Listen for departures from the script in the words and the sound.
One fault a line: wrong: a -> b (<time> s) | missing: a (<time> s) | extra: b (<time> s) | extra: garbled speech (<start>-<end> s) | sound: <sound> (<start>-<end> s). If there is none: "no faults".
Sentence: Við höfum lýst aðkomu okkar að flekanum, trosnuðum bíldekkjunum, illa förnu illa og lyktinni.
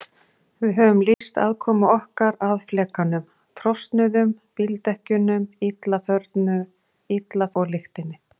sound: dropout (1.1-1.2 s)